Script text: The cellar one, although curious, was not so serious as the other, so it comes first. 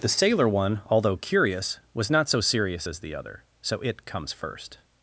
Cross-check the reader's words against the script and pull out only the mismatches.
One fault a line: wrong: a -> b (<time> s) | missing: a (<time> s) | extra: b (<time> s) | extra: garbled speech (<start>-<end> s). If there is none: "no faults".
wrong: cellar -> sailor (0.1 s)